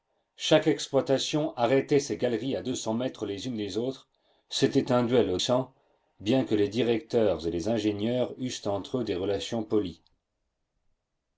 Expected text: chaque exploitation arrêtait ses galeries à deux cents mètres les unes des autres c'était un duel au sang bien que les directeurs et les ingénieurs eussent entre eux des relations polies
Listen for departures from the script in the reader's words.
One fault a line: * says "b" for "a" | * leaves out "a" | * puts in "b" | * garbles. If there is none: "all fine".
all fine